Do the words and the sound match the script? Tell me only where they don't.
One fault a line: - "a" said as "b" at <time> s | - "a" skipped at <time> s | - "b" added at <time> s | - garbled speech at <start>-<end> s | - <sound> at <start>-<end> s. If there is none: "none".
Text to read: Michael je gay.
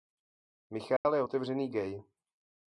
- dropout at 1.0-1.0 s
- "otevřený" added at 1.2 s